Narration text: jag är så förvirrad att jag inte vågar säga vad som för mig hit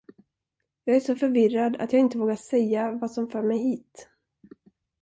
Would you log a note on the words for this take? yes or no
no